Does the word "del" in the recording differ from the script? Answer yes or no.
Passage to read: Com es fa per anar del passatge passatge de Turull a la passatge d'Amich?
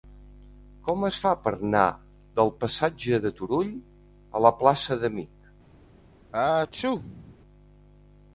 no